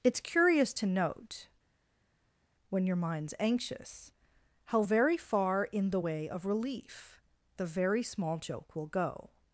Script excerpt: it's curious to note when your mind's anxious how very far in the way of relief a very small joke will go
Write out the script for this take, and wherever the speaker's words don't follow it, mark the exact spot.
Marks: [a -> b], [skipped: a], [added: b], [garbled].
it's curious to note when your mind's anxious how very far in the way of relief [a -> the] very small joke will go